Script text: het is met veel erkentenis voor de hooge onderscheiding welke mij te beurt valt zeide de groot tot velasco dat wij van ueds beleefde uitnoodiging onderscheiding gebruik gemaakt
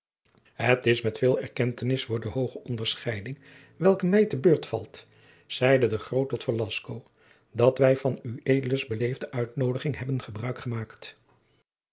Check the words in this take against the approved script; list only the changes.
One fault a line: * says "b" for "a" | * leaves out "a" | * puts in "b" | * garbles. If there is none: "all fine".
* says "hebben" for "onderscheiding"